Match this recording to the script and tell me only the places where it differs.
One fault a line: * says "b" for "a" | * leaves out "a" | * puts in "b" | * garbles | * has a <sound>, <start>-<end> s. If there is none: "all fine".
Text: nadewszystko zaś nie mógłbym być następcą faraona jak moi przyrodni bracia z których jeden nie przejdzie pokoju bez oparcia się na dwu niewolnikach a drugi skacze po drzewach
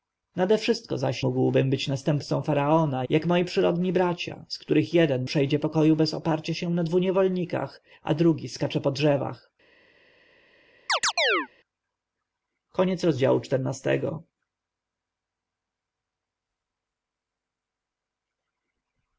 * leaves out "nie"
* leaves out "nie"
* has a chirp, 10.9-11.5 s